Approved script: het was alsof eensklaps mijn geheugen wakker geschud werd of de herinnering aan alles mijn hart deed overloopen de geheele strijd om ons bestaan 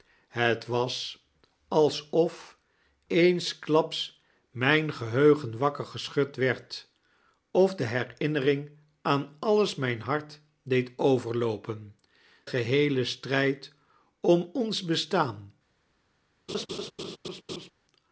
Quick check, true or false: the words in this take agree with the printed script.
false